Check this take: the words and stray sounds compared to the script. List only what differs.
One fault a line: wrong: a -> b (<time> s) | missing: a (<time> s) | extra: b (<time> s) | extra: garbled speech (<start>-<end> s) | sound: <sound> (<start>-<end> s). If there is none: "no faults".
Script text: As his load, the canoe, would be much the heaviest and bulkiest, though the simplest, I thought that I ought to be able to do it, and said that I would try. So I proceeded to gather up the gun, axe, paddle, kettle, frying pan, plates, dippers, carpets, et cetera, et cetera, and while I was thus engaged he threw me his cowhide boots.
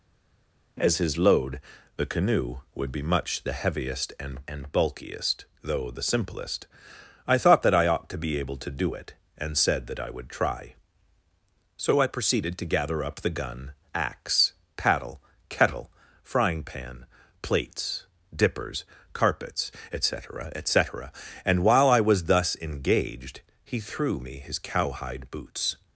extra: and (4.5 s)